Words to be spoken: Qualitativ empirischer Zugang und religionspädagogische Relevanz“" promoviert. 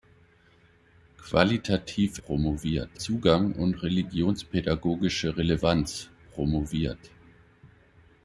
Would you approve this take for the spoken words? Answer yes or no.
no